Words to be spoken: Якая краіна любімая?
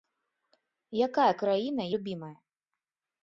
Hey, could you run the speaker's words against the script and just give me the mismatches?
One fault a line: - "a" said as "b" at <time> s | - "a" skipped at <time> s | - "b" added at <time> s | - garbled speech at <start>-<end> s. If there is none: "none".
none